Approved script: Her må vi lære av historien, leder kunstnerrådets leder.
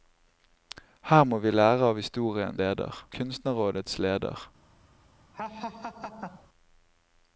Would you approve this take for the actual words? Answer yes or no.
yes